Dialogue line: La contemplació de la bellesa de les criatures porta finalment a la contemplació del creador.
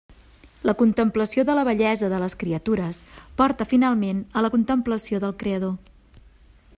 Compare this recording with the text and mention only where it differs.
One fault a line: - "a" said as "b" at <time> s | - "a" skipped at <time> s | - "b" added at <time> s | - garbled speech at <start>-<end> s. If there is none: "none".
none